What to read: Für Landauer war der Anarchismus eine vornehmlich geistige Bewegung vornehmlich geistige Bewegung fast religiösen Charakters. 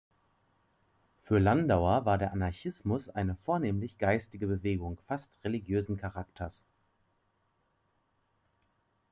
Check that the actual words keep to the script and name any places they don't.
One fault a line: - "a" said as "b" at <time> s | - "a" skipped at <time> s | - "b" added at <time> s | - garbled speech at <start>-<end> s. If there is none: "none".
- "vornehmlich geistige Bewegung" skipped at 5.0 s